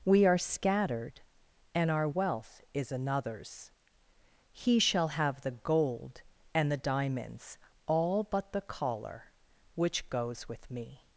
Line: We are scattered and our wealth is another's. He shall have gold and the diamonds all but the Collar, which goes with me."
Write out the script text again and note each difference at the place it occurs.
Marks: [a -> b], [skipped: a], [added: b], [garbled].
We are scattered and our wealth is another's. He shall have [added: the] gold and the diamonds all but the Collar, which goes with me."